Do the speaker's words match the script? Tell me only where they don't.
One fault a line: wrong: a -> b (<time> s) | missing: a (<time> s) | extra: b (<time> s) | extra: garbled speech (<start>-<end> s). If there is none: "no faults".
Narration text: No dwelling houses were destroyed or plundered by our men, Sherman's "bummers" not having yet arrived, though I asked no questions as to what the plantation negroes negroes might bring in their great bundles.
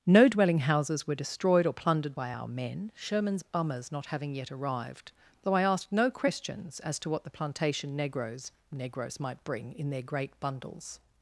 no faults